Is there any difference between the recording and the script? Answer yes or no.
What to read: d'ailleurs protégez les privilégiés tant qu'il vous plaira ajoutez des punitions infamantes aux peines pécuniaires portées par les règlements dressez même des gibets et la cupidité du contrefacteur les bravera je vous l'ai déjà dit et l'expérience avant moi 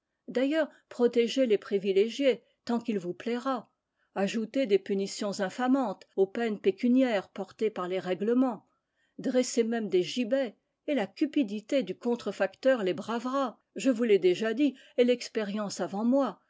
no